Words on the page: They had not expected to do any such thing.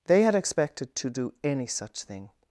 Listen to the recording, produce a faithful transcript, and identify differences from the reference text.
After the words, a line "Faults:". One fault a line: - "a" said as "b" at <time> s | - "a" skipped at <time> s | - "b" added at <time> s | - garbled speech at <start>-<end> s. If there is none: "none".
They had expected to do any such thing.
Faults:
- "not" skipped at 0.3 s